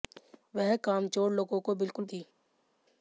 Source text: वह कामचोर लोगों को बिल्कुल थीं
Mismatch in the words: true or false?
false